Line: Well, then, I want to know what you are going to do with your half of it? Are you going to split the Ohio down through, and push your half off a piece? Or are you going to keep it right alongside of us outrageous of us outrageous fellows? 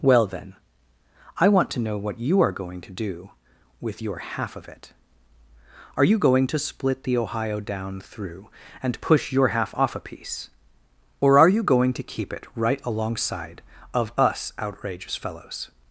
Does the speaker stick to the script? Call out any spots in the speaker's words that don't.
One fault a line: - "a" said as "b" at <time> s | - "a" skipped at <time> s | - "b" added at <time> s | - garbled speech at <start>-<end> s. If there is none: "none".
- "of us outrageous" skipped at 15.1 s